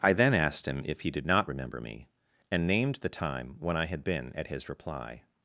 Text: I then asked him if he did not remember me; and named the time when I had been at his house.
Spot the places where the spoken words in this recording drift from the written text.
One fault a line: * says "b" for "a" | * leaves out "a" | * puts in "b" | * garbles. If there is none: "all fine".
* says "reply" for "house"